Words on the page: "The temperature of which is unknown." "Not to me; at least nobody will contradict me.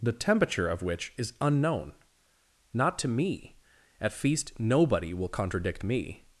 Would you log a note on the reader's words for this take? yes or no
yes